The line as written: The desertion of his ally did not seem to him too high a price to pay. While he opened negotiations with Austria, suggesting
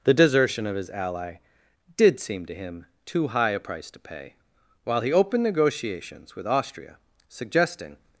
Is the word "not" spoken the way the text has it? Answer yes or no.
no